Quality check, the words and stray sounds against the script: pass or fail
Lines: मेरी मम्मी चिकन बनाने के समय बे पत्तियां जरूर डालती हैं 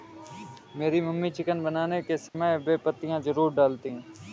fail